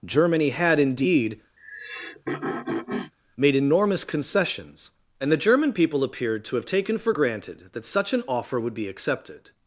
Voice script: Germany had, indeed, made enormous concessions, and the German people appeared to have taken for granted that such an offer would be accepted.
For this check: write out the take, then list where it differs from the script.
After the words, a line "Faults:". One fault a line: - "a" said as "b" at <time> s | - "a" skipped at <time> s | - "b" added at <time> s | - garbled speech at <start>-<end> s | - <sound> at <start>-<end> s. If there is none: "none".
Germany had, indeed, made enormous concessions, and the German people appeared to have taken for granted that such an offer would be accepted.
Faults:
- throat clearing at 1.6-3.1 s